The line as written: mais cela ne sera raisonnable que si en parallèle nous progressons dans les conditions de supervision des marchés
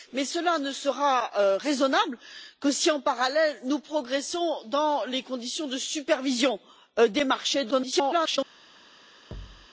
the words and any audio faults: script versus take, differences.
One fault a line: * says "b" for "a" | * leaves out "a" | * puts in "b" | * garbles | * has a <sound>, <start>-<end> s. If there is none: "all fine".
* garbles
* has a thud, 9.3-9.7 s